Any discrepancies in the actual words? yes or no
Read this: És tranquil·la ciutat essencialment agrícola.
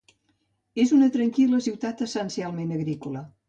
yes